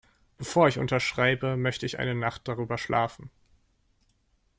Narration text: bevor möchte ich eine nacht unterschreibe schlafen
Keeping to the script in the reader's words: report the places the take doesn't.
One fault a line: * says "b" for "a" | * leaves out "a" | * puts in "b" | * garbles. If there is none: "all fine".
* puts in "ich unterschreibe"
* says "darüber" for "unterschreibe"